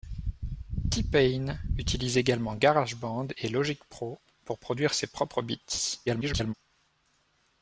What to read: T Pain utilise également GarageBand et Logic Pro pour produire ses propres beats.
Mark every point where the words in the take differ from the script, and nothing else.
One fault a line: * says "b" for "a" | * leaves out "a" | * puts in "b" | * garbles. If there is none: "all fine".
* garbles